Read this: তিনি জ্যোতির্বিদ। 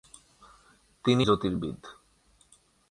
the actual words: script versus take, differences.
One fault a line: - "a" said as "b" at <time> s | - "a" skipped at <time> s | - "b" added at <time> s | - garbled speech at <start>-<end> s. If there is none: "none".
none